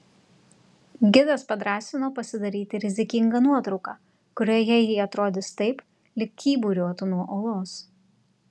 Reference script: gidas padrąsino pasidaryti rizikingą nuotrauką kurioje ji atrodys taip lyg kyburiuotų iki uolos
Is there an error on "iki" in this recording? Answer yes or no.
yes